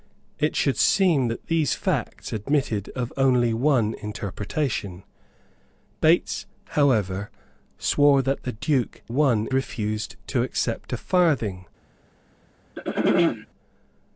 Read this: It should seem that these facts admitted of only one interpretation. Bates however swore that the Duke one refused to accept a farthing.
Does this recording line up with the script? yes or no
yes